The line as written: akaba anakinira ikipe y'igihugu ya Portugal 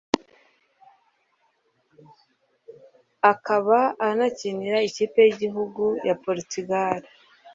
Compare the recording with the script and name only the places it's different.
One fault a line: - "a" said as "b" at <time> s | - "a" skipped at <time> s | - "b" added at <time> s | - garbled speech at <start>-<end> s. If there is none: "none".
none